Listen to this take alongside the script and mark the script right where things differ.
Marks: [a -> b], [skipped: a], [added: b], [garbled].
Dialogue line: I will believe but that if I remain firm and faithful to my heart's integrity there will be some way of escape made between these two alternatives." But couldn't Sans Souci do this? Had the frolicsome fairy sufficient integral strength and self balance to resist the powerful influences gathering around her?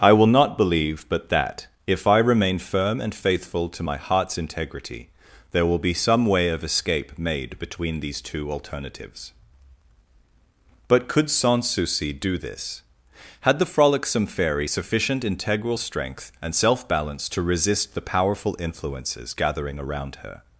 I will [added: not] believe but that if I remain firm and faithful to my heart's integrity there will be some way of escape made between these two alternatives." But [couldn't -> could] Sans Souci do this? Had the frolicsome fairy sufficient integral strength and self balance to resist the powerful influences gathering around her?